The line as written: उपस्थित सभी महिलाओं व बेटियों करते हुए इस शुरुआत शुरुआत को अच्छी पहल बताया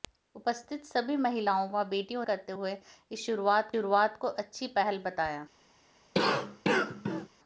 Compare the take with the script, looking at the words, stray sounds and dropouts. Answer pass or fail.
fail